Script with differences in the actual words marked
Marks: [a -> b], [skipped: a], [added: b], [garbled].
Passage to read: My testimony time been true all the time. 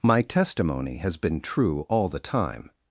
My testimony [time -> has] been true all the time.